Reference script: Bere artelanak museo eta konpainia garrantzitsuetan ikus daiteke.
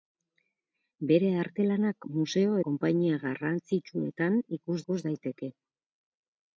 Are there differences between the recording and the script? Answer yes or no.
yes